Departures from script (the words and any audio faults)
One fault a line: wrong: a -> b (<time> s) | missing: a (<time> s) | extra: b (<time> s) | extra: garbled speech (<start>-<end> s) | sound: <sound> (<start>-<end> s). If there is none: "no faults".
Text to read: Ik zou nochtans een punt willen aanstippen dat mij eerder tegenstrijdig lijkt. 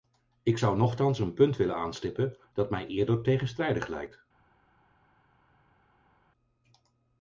no faults